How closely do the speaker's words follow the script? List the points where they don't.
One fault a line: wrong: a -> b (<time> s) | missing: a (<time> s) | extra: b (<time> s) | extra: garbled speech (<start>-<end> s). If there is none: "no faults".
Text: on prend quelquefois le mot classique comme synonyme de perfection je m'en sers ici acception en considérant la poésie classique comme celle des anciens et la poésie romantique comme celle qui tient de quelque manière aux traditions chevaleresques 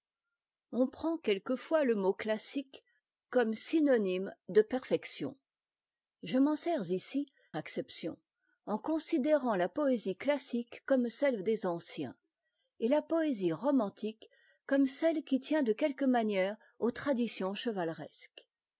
no faults